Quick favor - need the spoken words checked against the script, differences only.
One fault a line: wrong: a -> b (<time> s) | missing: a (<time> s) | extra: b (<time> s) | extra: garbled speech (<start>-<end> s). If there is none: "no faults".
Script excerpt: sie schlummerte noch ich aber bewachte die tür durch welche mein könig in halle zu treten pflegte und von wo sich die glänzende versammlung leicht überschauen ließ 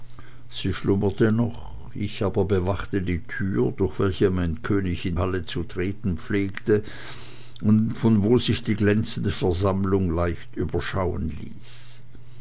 no faults